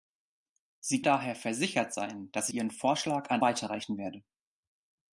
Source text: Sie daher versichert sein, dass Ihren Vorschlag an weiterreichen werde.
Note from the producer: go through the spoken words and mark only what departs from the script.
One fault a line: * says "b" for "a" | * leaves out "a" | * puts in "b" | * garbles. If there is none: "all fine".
all fine